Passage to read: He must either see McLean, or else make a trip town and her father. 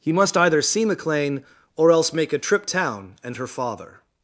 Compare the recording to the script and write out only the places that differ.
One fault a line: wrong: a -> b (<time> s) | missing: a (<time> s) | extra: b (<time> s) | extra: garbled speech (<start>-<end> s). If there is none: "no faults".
no faults